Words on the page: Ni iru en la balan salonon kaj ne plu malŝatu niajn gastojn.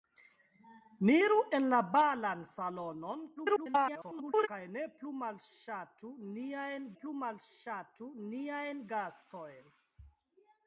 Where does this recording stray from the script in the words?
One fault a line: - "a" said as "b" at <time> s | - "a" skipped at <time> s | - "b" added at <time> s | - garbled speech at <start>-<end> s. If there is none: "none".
- garbled speech at 3.4-4.5 s
- "plu malŝatu niajn" added at 7.0 s